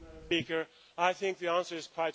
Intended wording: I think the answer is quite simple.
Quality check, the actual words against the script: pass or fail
pass